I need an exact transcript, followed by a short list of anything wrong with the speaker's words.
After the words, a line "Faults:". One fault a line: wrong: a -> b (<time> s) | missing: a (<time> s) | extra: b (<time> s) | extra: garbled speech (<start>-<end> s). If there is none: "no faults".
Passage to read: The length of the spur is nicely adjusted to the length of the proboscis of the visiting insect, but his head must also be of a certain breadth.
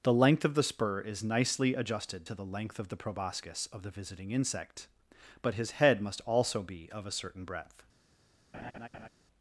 The length of the spur is nicely adjusted to the length of the proboscis of the visiting insect, but his head must also be of a certain breadth.
Faults:
no faults